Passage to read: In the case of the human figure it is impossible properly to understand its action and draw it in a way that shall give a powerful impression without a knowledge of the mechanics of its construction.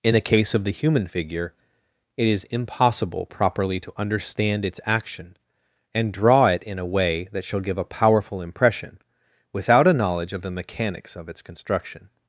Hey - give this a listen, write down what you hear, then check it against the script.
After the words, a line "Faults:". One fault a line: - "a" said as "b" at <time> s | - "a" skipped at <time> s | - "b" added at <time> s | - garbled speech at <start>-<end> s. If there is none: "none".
In the case of the human figure it is impossible properly to understand its action and draw it in a way that shall give a powerful impression without a knowledge of the mechanics of its construction.
Faults:
none